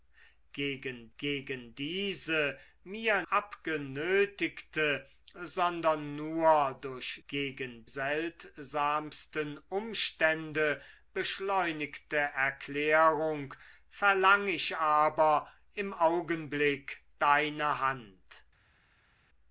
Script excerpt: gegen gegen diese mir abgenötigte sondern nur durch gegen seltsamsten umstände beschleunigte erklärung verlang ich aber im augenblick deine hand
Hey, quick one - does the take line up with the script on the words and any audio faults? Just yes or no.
yes